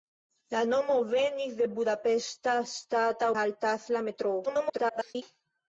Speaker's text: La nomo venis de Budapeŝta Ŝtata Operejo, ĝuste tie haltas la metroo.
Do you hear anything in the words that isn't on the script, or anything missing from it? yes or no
yes